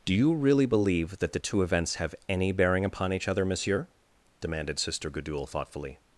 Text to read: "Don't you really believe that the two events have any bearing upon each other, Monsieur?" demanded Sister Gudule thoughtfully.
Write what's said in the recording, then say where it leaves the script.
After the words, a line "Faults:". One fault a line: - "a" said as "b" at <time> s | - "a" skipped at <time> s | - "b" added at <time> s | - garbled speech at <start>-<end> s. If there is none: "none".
"Do you really believe that the two events have any bearing upon each other, Monsieur?" demanded Sister Gudule thoughtfully.
Faults:
- "Don't" said as "Do" at 0.0 s